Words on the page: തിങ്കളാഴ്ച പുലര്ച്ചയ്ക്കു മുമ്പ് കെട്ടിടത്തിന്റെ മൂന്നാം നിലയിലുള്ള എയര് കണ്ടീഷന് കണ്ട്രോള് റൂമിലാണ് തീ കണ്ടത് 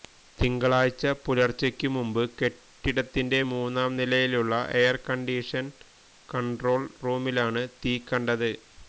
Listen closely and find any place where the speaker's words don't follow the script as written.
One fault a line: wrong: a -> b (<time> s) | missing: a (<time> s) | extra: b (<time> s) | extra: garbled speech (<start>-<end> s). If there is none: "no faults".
no faults